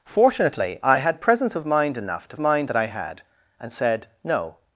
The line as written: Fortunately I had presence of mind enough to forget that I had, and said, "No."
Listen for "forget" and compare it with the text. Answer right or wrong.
wrong